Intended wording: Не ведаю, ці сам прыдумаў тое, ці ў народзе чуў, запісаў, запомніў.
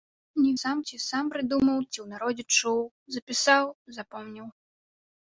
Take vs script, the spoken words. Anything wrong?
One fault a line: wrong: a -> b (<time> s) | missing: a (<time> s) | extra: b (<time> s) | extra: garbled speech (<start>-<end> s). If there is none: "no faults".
wrong: ведаю -> сам (0.6 s)
missing: тое (1.8 s)